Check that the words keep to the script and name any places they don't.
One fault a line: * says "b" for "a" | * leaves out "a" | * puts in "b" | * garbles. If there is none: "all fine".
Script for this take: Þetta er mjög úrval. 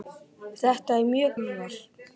all fine